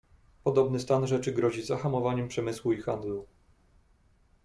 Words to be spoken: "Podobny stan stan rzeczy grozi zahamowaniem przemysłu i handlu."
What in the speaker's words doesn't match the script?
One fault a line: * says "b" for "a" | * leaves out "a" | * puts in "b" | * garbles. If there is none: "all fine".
* leaves out "stan"